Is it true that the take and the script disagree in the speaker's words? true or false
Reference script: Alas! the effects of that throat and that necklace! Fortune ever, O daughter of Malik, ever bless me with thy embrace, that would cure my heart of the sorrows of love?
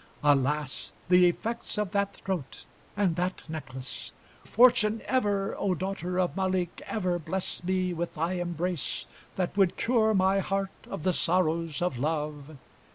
false